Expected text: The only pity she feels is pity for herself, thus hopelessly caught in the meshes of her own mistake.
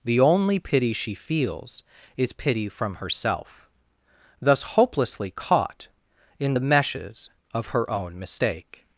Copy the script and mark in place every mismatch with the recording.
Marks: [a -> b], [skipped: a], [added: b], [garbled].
The only pity she feels is pity [for -> from] herself, thus hopelessly caught in the meshes of her own mistake.